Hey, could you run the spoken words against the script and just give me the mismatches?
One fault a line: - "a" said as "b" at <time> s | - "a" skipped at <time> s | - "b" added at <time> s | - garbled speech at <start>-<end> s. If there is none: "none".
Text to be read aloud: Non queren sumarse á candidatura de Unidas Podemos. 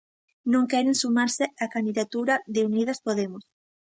none